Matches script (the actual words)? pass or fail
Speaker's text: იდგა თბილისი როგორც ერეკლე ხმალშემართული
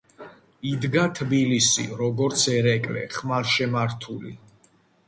pass